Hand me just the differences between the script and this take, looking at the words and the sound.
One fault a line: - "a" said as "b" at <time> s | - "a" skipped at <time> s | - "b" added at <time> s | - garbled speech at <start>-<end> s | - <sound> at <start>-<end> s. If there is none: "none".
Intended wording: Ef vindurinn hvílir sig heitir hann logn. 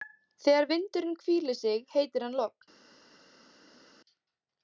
- "Ef" said as "Þegar" at 0.5 s